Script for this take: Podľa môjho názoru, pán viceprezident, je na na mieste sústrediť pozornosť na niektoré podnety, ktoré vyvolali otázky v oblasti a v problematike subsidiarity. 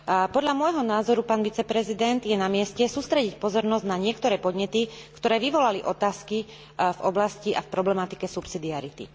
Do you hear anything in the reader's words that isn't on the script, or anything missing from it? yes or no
yes